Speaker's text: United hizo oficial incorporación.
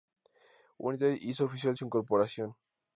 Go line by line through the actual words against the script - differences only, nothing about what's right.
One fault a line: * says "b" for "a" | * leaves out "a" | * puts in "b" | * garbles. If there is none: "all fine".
* puts in "su"